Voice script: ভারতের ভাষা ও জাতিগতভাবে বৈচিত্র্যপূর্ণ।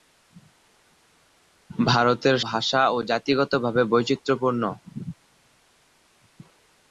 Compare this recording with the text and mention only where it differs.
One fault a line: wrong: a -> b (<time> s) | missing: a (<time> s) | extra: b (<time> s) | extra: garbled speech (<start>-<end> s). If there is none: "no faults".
no faults